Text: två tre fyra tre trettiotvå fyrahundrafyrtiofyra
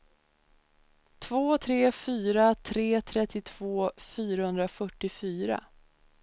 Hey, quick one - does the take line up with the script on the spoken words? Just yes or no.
yes